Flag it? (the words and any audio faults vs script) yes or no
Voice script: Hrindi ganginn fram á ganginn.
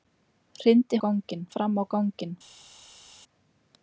no